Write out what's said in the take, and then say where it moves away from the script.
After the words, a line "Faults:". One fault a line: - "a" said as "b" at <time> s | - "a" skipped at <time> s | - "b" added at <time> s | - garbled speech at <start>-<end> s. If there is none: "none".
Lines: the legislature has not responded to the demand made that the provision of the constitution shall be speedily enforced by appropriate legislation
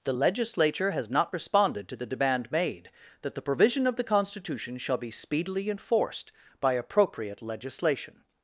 the legislature has not responded to the demand made that the provision of the constitution shall be speedily enforced by appropriate legislation
Faults:
none